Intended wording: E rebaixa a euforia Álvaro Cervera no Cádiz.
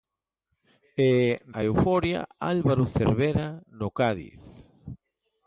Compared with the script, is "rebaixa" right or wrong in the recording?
wrong